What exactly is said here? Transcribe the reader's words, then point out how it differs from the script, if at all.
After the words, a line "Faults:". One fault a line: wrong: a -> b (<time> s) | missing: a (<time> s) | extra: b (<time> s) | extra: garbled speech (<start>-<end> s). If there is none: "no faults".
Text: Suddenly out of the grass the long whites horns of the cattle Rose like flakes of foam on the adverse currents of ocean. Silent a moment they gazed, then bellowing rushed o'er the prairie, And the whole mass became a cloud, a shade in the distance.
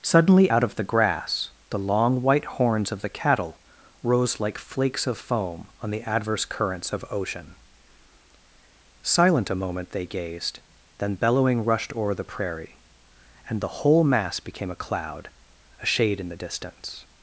Suddenly out of the grass the long white horns of the cattle Rose like flakes of foam on the adverse currents of ocean. Silent a moment they gazed, then bellowing rushed o'er the prairie, And the whole mass became a cloud, a shade in the distance.
Faults:
wrong: whites -> white (2.2 s)